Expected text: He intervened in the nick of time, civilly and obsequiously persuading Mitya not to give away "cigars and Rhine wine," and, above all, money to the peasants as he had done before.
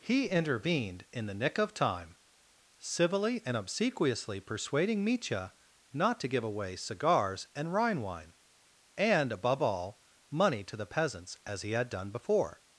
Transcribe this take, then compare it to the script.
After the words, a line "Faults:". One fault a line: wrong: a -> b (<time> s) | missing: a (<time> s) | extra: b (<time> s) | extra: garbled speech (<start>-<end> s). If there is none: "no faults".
He intervened in the nick of time, civilly and obsequiously persuading Mitya not to give away "cigars and Rhine wine," and, above all, money to the peasants as he had done before.
Faults:
no faults